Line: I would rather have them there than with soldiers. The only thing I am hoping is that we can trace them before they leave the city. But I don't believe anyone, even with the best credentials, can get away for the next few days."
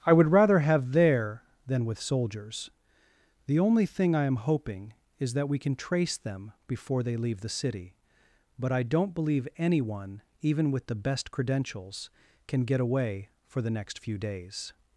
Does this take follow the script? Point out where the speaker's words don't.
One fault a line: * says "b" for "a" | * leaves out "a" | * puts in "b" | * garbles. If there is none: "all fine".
* leaves out "them"